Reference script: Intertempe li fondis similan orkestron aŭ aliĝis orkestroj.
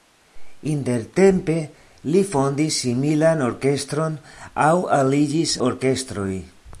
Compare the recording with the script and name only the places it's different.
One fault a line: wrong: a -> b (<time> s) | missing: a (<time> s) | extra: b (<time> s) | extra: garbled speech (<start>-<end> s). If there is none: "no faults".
no faults